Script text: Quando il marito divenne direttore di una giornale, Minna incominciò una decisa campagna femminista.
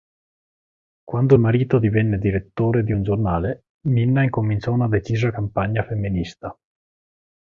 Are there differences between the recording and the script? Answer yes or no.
yes